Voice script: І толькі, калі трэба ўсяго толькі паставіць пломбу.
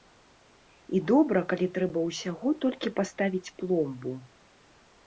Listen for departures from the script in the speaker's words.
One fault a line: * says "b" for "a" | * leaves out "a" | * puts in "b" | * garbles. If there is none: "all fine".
* says "добра" for "толькі"